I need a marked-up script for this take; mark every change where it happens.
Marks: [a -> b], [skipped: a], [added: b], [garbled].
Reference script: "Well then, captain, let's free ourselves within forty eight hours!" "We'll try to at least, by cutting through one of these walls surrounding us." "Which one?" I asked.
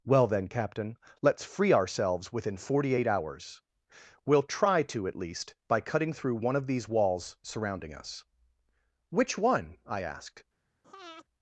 "Well then, captain, let's free ourselves within forty eight hours!" "We'll try to at least, by cutting through one of these walls surrounding us." "Which one?" I asked.